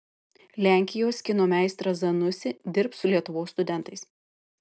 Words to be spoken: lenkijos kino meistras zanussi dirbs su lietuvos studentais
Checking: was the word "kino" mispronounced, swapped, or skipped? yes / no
no